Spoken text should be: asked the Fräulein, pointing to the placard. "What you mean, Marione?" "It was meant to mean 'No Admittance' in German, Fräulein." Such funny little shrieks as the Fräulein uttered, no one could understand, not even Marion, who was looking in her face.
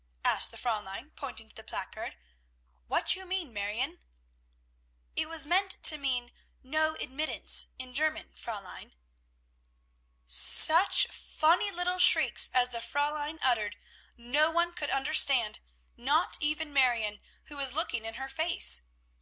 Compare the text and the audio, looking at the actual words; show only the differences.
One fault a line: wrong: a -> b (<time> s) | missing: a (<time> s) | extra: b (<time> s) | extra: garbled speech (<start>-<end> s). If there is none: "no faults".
no faults